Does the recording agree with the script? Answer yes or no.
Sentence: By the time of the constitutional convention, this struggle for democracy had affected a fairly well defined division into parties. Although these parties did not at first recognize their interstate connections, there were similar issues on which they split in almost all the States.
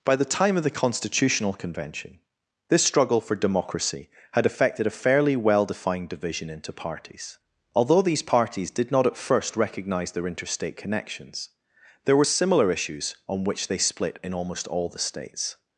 yes